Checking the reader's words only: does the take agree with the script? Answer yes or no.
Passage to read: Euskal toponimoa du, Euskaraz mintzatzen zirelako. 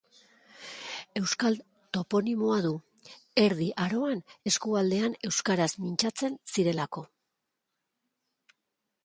no